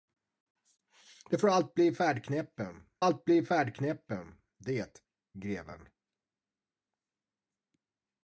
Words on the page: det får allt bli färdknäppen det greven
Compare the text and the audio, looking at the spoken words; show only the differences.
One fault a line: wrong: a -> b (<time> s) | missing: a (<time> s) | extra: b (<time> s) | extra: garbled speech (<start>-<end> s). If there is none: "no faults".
extra: allt bli färdknäppen (3.0 s)